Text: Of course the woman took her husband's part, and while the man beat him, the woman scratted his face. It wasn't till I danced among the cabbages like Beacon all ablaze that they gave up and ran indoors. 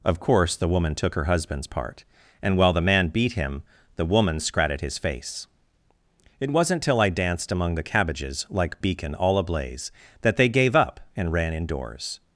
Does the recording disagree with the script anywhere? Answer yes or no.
no